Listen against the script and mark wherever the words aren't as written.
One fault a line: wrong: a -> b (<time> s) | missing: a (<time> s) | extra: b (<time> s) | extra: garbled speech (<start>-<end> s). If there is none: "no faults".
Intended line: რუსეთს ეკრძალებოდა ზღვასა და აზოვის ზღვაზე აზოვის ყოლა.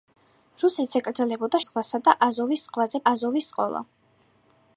no faults